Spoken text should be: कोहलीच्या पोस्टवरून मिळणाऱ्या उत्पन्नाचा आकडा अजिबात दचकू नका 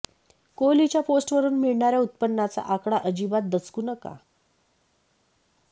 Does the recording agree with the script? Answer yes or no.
yes